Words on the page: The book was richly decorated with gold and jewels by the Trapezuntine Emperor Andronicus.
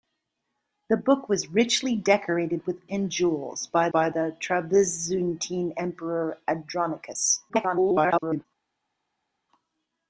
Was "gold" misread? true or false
true